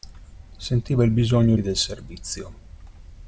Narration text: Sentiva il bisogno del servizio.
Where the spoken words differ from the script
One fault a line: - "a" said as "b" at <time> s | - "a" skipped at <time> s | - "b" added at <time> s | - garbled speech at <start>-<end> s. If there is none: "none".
none